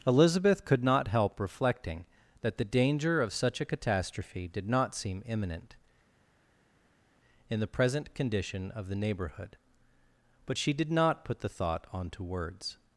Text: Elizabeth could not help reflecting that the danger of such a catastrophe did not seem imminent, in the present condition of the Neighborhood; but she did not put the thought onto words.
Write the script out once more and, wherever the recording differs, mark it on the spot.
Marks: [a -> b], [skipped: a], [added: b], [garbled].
Elizabeth could not help reflecting that the danger of such a catastrophe did not seem imminent, in the present condition of the Neighborhood; but she did not put the thought onto words.